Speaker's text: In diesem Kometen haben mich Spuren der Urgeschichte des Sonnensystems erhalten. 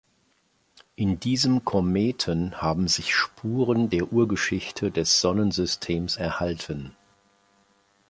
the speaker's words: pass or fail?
fail